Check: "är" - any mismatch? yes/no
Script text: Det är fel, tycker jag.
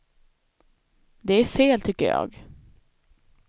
no